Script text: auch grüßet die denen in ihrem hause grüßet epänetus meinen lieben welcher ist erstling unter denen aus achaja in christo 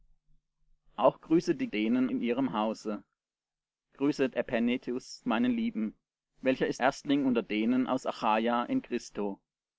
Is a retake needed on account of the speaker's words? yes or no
no